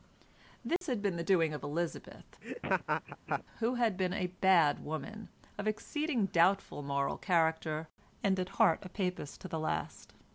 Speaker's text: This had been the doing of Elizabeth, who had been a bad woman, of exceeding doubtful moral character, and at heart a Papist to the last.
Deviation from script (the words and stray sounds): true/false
true